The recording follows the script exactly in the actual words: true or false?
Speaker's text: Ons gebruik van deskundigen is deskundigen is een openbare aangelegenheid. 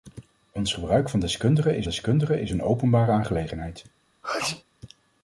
true